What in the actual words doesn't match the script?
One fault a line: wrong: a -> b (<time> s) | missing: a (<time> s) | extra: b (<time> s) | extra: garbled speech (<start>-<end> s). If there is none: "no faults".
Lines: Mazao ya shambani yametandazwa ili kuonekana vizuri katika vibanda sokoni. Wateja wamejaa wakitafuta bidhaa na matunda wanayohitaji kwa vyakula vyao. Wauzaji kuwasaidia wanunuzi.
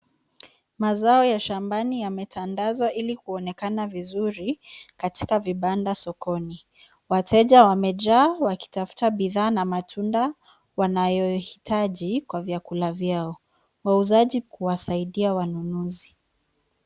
no faults